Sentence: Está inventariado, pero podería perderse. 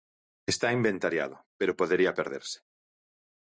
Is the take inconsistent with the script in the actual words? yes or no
no